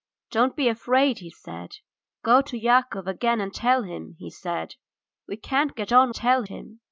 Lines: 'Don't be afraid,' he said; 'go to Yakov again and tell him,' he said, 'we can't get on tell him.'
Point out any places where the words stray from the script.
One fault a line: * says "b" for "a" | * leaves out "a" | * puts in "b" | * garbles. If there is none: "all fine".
all fine